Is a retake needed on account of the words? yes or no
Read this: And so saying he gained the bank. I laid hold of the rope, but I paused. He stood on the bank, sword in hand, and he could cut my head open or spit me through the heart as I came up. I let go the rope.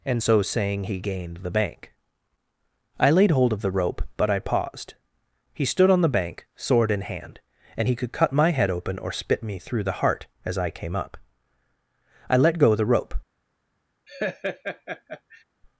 no